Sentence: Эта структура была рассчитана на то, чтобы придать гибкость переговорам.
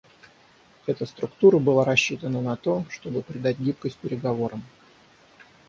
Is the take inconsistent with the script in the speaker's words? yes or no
no